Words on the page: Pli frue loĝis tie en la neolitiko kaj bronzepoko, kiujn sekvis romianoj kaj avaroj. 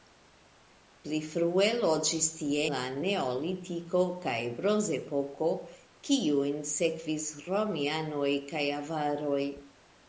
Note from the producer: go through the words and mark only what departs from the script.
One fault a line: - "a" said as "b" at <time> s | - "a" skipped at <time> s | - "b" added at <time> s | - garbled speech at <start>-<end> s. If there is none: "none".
- "en" skipped at 2.6 s